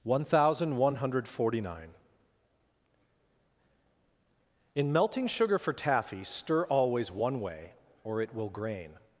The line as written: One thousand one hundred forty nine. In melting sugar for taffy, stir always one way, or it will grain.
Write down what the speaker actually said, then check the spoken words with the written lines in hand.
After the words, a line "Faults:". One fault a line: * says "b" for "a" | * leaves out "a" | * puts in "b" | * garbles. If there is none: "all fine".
One thousand one hundred forty nine. In melting sugar for taffy, stir always one way, or it will grain.
Faults:
all fine